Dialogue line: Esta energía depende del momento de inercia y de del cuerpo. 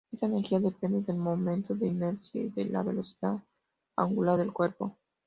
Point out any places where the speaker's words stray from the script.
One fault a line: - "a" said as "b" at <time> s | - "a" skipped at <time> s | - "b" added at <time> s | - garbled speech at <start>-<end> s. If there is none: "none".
- "la velocidad angular" added at 2.6 s